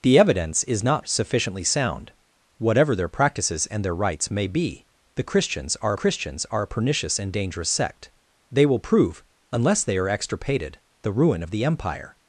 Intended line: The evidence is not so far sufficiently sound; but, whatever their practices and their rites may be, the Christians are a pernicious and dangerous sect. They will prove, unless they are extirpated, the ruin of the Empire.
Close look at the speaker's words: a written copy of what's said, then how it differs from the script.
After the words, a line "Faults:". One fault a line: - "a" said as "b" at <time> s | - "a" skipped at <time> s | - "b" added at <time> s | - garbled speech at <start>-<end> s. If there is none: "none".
The evidence is not sufficiently sound; whatever their practices and their rites may be, the Christians are Christians are a pernicious and dangerous sect. They will prove, unless they are extirpated, the ruin of the Empire.
Faults:
- "so far" skipped at 1.1 s
- "but" skipped at 2.1 s
- "Christians are" added at 5.9 s